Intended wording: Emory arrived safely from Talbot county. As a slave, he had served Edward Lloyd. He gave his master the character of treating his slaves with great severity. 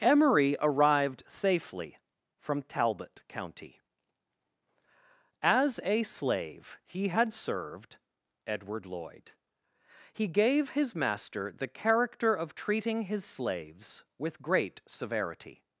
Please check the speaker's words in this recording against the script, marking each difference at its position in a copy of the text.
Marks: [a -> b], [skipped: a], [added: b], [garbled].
Emory arrived safely from Talbot county. As a slave, he had served Edward Lloyd. He gave his master the character of treating his slaves with great severity.